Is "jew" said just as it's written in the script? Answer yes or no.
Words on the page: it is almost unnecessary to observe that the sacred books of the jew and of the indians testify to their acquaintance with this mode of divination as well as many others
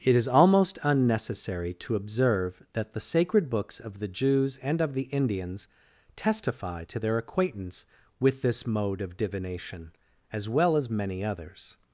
no